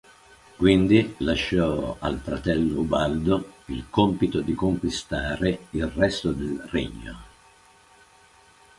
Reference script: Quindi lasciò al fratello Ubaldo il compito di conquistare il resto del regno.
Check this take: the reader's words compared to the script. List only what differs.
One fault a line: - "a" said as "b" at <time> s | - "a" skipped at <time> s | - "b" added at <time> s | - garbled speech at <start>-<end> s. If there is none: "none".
none